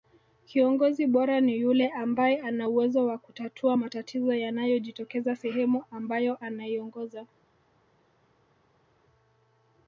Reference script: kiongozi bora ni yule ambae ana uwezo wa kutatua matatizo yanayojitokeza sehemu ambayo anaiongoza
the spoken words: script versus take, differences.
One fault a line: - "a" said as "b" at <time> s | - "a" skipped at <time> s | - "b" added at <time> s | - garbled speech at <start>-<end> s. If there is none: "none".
none